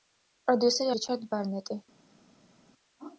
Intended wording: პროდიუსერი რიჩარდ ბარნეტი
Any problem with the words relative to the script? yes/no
no